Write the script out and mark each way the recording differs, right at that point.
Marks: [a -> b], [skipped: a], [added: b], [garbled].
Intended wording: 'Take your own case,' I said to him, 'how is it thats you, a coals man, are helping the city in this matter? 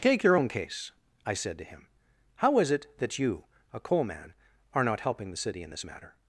'Take your own case,' I said to him, 'how is it [thats -> that] you, a [coals -> coal] man, are [added: not] helping the city in this matter?